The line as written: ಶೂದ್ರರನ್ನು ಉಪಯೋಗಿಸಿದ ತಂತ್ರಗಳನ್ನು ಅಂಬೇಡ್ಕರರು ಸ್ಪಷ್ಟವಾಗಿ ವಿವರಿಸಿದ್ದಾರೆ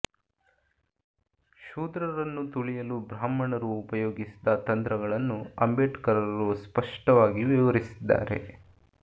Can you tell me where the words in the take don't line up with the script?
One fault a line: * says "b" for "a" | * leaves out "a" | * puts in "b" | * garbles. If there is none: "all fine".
* puts in "ತುಳಿಯಲು ಬ್ರಾಹ್ಮಣರು"